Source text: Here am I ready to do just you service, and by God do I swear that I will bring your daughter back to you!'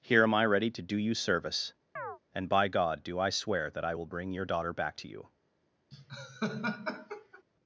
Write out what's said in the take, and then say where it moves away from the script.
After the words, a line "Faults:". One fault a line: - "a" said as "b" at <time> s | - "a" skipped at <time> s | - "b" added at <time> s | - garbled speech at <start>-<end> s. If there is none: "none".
Here am I ready to do you service, and by God do I swear that I will bring your daughter back to you!'
Faults:
- "just" skipped at 1.0 s